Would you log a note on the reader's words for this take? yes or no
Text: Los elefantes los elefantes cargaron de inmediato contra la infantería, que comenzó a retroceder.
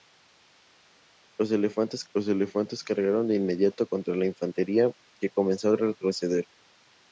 no